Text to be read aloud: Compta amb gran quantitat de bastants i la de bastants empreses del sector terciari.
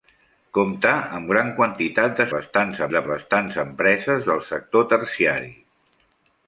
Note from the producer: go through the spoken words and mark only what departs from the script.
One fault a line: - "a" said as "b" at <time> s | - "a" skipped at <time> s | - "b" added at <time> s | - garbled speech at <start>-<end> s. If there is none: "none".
none